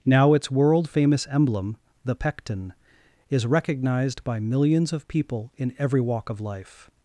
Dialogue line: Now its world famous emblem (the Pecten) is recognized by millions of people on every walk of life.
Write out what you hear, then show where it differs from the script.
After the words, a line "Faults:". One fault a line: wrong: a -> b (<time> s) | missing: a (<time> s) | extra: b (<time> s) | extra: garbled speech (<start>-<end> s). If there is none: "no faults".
Now its world famous emblem (the Pecten) is recognized by millions of people in every walk of life.
Faults:
wrong: on -> in (5.6 s)